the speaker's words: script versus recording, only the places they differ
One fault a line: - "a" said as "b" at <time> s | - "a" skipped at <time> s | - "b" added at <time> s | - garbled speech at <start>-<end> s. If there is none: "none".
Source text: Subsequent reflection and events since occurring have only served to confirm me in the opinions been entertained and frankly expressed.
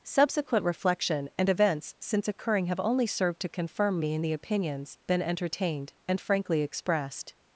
none